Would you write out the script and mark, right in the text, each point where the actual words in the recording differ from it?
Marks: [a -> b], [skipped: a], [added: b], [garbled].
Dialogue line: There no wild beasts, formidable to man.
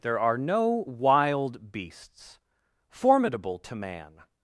There [added: are] no wild beasts, formidable to man.